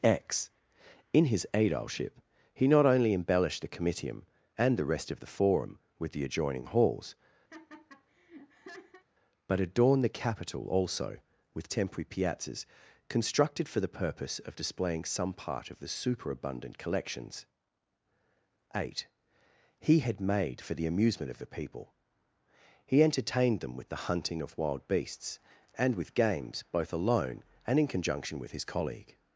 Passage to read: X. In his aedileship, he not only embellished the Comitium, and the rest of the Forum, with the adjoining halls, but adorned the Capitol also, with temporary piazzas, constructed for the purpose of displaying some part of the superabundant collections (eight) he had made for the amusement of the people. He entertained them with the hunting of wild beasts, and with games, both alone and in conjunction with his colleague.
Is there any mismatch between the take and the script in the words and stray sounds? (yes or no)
yes